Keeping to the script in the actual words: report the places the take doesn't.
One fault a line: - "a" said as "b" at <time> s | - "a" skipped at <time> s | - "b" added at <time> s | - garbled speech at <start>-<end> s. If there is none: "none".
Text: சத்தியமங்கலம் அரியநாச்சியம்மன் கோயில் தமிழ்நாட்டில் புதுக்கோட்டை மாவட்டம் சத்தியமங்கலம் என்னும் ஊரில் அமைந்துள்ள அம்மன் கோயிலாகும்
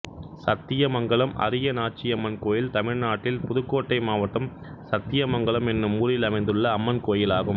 none